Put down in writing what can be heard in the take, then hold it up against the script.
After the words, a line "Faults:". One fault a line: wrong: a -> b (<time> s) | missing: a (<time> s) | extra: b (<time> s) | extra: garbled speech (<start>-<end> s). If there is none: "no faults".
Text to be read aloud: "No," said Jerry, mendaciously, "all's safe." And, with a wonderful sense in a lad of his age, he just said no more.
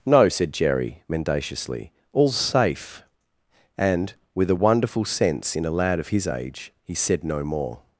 "No," said Jerry, mendaciously, "all's safe." And, with a wonderful sense in a lad of his age, he said no more.
Faults:
missing: just (6.9 s)